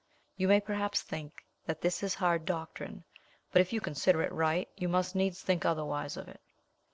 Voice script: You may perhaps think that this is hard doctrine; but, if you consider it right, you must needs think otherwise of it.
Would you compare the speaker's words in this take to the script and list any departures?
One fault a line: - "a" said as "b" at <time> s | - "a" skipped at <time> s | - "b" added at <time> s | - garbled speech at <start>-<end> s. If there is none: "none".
none